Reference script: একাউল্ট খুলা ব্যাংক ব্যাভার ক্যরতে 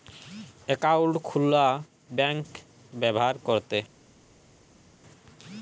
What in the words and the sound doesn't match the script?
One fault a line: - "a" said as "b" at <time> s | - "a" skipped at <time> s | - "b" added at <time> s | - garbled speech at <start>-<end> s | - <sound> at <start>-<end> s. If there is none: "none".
none